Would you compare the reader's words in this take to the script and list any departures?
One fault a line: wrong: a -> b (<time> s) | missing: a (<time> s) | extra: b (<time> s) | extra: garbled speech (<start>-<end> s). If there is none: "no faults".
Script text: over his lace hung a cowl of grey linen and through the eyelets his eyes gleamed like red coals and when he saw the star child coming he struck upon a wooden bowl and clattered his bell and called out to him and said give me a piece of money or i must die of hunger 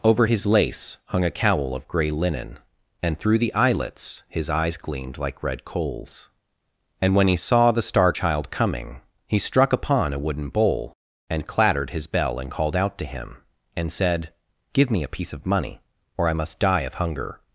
no faults